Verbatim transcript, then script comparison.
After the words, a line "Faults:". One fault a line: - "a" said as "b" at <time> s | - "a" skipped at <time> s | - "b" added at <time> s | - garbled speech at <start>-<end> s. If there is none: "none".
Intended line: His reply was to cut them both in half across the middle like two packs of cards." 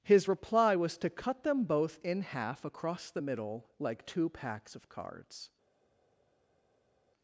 His reply was to cut them both in half across the middle like two packs of cards."
Faults:
none